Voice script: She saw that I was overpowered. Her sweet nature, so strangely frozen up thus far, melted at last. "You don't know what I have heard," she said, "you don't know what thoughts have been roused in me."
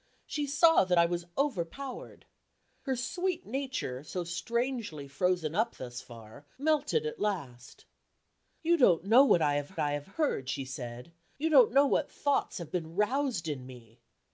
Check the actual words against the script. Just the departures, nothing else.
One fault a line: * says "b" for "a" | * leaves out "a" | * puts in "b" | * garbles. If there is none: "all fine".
* puts in "I have"